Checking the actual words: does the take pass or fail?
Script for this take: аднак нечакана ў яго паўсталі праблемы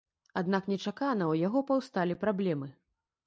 pass